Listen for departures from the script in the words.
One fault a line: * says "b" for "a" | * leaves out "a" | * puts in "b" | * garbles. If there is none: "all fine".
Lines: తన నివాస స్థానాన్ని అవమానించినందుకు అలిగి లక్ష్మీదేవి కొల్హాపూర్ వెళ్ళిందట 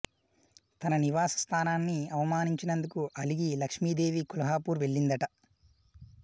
all fine